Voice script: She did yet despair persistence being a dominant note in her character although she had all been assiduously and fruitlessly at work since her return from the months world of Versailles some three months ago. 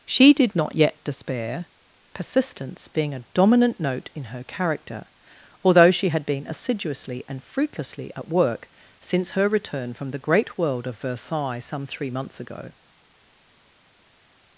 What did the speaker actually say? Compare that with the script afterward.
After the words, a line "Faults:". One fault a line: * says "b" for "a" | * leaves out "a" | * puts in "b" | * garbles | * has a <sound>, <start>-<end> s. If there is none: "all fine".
She did not yet despair persistence being a dominant note in her character although she had been assiduously and fruitlessly at work since her return from the great world of Versailles some three months ago.
Faults:
* puts in "not"
* leaves out "all"
* says "great" for "months"